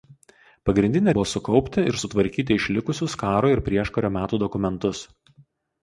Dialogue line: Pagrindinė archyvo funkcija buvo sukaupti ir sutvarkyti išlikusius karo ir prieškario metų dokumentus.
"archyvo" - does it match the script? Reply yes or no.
no